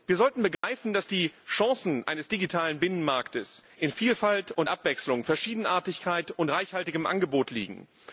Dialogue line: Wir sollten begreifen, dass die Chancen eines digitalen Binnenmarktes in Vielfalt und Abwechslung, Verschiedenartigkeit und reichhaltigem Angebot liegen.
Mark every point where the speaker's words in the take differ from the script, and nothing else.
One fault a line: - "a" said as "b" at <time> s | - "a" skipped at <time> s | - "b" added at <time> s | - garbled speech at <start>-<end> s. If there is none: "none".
none